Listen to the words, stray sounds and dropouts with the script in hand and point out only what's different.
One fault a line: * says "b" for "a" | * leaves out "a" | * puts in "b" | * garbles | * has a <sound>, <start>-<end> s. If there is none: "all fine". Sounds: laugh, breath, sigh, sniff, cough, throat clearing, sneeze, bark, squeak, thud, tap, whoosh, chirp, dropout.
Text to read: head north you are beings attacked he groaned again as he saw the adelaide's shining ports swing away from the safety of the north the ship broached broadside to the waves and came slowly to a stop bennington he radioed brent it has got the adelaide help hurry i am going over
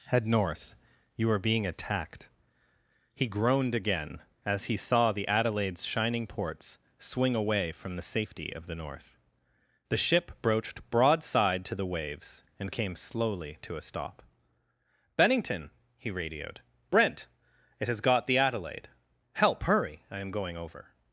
* says "being" for "beings"